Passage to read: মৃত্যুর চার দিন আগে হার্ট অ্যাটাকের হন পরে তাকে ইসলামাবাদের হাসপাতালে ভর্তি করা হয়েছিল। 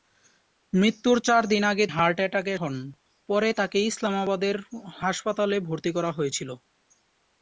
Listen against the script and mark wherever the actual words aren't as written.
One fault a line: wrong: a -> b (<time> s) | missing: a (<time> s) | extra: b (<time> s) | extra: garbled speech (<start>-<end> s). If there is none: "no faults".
no faults